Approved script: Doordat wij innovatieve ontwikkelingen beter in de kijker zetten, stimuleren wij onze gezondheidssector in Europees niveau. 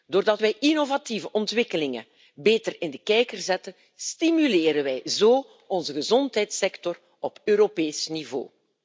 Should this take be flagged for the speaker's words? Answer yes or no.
yes